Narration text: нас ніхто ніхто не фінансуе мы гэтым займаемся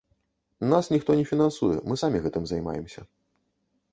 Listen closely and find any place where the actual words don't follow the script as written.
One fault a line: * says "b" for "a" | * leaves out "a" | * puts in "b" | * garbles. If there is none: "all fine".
* leaves out "ніхто"
* puts in "самі"